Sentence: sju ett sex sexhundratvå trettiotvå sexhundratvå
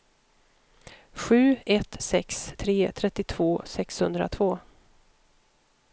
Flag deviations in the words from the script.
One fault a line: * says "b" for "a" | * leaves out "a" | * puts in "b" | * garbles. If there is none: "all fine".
* says "tre" for "sexhundratvå"